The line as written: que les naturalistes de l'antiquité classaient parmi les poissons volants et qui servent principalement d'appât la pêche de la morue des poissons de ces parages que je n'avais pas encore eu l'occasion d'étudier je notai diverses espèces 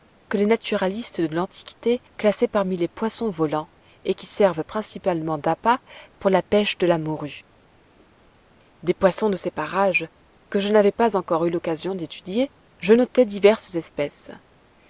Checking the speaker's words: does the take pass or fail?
fail